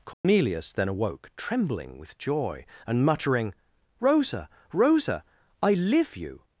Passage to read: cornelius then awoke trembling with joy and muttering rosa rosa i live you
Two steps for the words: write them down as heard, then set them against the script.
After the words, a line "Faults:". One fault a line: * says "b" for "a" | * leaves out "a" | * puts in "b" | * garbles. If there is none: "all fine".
cornelius then awoke trembling with joy and muttering rosa rosa i live you
Faults:
all fine